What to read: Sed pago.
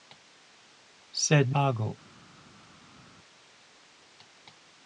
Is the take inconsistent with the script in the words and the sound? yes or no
no